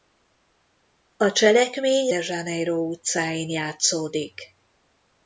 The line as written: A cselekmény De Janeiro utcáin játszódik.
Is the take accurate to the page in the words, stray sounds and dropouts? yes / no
yes